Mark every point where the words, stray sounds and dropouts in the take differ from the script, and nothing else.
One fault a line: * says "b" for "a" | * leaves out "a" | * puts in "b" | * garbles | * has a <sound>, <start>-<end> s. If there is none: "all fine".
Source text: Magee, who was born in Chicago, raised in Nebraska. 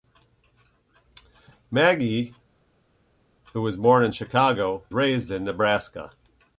all fine